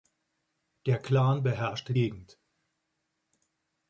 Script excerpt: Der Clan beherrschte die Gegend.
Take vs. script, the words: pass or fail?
fail